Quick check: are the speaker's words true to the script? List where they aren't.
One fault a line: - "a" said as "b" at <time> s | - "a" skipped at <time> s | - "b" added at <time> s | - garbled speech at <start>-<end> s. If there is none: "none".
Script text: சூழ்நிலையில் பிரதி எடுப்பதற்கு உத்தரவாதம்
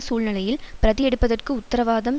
none